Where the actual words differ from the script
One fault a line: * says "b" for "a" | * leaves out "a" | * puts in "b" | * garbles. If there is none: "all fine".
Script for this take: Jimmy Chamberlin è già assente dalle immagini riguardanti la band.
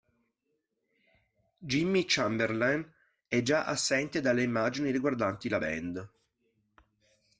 all fine